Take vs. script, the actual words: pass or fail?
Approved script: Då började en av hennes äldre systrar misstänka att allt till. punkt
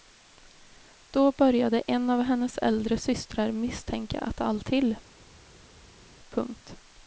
pass